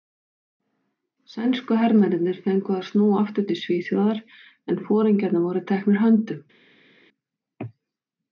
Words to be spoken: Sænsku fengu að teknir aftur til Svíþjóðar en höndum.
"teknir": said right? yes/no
no